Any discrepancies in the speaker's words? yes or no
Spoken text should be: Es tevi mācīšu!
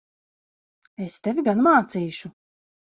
yes